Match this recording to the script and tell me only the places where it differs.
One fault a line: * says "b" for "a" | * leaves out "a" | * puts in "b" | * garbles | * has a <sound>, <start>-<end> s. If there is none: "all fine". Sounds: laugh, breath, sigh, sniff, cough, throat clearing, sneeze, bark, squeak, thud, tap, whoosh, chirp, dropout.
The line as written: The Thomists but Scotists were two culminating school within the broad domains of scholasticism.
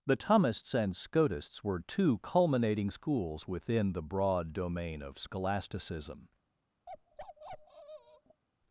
* says "and" for "but"
* says "schools" for "school"
* says "domain" for "domains"
* has a bark, 6.9-8.4 s